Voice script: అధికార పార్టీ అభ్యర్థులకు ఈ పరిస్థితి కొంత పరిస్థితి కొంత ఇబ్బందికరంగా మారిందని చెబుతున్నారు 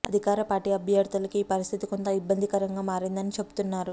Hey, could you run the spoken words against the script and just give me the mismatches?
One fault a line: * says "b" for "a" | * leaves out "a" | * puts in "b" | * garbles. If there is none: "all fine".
* leaves out "పరిస్థితి కొంత"